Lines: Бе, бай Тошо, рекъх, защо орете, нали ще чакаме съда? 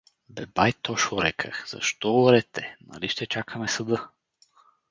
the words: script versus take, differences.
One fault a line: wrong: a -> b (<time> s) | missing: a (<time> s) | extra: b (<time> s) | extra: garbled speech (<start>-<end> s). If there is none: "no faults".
no faults